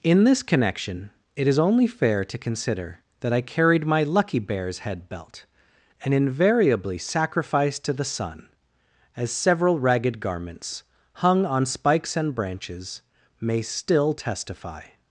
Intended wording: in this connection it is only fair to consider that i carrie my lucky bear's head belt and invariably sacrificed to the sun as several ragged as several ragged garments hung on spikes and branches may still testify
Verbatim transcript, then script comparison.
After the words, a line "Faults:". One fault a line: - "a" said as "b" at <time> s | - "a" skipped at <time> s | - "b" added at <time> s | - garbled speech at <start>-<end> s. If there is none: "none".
in this connection it is only fair to consider that i carried my lucky bear's head belt and invariably sacrificed to the sun as several ragged garments hung on spikes and branches may still testify
Faults:
- "carrie" said as "carried" at 3.4 s
- "as several ragged" skipped at 10.2 s